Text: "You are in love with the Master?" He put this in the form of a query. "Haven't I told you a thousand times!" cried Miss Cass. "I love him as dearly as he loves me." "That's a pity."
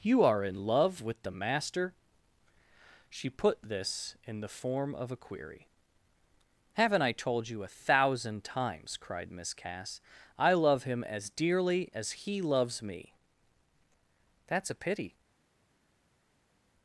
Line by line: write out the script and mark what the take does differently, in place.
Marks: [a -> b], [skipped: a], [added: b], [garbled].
"You are in love with the Master?" [He -> She] put this in the form of a query. "Haven't I told you a thousand times!" cried Miss Cass. "I love him as dearly as he loves me." "That's a pity."